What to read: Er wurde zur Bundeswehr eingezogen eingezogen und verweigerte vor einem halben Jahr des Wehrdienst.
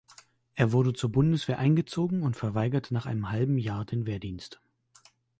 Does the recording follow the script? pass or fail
fail